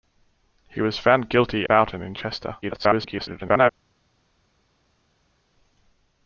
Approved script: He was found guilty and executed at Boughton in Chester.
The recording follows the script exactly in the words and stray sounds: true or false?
false